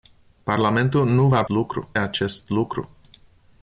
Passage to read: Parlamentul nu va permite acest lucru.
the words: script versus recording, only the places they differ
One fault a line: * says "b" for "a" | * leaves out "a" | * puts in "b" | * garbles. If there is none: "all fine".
* says "lucru" for "permite"